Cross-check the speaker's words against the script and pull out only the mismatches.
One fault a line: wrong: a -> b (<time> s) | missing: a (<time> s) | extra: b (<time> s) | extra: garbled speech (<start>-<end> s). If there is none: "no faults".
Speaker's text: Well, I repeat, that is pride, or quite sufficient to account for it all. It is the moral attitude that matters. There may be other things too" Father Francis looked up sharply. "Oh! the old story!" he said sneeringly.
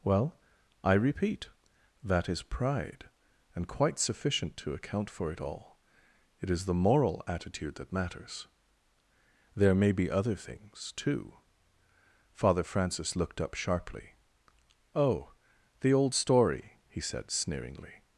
wrong: or -> and (3.5 s)